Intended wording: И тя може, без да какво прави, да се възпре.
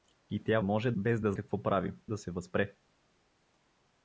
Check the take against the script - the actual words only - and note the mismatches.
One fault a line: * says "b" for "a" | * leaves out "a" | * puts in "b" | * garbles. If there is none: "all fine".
all fine